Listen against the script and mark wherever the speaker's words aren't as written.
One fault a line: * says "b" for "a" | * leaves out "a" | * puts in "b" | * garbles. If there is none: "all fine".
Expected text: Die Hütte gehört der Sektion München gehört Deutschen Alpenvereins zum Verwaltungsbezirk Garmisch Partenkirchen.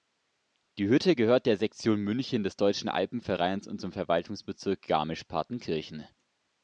* says "des" for "gehört"
* puts in "und"